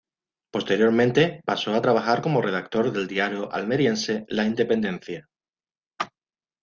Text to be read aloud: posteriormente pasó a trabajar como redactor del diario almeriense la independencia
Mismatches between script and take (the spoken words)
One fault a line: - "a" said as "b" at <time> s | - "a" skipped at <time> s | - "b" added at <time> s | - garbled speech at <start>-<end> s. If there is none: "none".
none